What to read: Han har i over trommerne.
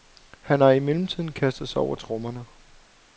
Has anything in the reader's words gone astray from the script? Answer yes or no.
yes